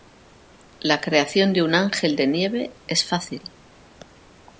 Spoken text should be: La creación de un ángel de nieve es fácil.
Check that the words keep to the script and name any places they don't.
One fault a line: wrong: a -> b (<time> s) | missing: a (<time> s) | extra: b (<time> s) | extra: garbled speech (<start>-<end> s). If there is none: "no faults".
no faults